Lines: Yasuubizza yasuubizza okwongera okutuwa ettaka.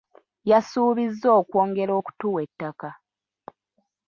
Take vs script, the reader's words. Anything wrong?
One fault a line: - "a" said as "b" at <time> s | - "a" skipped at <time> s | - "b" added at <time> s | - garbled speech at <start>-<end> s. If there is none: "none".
- "yasuubizza" skipped at 1.3 s